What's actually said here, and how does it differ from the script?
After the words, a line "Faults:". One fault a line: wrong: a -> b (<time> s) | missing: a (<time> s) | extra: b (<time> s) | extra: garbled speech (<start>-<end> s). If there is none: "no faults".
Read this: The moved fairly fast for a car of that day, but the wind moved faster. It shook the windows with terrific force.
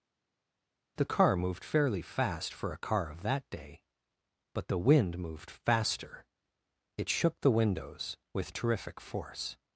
The car moved fairly fast for a car of that day, but the wind moved faster. It shook the windows with terrific force.
Faults:
extra: car (1.0 s)